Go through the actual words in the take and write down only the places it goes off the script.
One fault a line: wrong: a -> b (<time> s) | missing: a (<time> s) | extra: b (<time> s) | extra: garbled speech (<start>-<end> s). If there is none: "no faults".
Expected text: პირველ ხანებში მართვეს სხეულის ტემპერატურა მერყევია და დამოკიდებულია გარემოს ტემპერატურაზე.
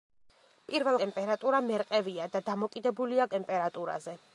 missing: ხანებში მართვეს სხეულის (1.0 s)
missing: გარემოს (3.3 s)